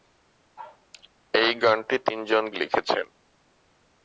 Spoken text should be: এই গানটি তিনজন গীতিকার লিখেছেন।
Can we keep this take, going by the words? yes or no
no